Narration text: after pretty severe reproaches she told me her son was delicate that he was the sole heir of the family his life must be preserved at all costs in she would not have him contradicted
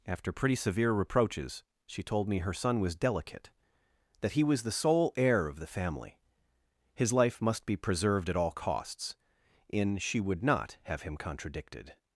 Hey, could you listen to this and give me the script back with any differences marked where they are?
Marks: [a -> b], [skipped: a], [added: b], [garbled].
after pretty severe reproaches she told me her son was delicate that he was the sole heir of the family his life must be preserved at all costs in she would not have him contradicted